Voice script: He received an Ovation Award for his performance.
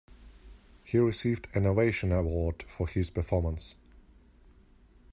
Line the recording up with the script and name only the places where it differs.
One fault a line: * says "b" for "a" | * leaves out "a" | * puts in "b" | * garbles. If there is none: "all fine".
all fine